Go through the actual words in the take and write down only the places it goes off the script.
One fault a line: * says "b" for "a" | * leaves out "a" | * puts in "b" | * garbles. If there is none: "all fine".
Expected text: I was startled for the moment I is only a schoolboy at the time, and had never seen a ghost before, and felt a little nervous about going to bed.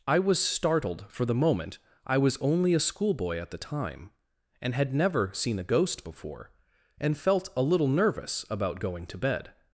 * says "was" for "is"